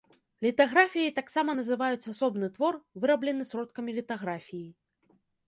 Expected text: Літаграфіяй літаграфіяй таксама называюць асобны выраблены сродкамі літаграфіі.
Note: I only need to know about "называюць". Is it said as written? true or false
true